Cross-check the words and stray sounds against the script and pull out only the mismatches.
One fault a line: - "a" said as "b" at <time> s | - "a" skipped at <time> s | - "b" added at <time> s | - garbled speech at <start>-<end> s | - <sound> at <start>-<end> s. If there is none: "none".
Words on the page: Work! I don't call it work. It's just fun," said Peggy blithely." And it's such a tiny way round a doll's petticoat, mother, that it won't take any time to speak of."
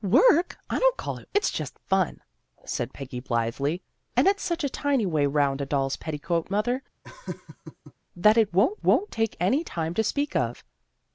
- "work" skipped at 1.3 s
- laugh at 7.0-7.9 s
- "won't" added at 8.8 s